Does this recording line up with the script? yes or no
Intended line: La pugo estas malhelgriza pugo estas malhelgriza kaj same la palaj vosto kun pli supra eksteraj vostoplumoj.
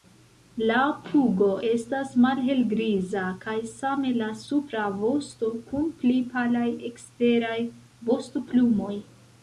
no